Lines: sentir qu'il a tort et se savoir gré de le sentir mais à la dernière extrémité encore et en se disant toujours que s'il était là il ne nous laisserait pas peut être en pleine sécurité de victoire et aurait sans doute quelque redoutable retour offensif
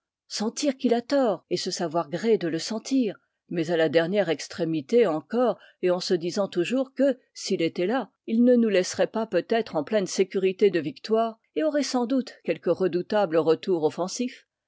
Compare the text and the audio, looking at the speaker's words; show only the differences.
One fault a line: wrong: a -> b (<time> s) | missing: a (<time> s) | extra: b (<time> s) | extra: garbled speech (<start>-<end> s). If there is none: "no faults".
no faults